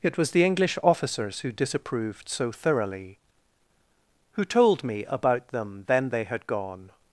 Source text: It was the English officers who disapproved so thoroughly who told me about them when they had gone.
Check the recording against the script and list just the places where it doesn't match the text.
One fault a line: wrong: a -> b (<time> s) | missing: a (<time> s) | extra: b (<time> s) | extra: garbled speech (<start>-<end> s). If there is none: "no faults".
wrong: when -> then (5.9 s)